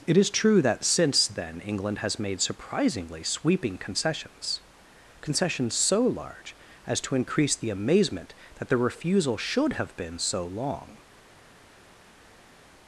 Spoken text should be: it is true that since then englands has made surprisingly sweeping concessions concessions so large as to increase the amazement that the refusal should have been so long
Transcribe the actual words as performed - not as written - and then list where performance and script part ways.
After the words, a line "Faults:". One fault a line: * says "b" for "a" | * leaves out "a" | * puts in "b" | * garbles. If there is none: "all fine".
it is true that since then england has made surprisingly sweeping concessions concessions so large as to increase the amazement that the refusal should have been so long
Faults:
* says "england" for "englands"